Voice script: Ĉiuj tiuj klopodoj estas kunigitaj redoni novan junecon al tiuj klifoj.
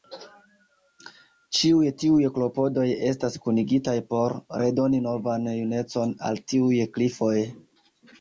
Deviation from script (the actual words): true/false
true